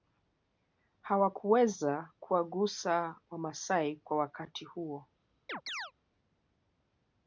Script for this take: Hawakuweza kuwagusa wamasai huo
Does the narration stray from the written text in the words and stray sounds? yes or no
yes